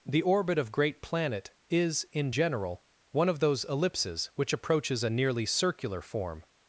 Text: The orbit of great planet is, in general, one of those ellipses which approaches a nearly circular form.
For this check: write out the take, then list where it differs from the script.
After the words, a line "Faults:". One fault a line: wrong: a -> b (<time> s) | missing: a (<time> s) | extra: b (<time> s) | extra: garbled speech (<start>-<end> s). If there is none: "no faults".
The orbit of great planet is, in general, one of those ellipses which approaches a nearly circular form.
Faults:
no faults